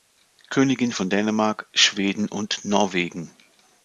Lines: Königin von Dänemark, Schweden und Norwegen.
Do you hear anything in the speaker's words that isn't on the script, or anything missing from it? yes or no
no